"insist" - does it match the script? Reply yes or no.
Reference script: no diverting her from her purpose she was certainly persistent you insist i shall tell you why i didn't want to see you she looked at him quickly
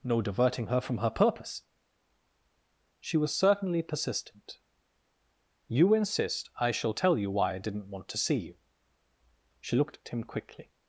yes